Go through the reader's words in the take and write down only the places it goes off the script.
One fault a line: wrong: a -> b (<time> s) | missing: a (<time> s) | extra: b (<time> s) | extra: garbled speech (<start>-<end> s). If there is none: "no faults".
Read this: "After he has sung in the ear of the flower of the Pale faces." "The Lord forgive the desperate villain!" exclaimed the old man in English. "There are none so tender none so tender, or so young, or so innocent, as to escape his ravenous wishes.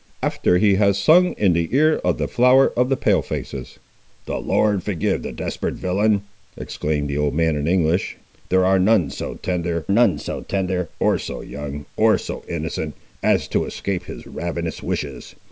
no faults